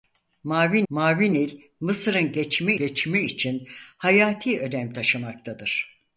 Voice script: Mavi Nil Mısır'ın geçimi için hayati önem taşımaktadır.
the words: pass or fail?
fail